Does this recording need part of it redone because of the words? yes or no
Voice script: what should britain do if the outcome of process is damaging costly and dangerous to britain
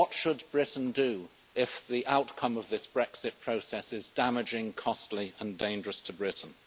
yes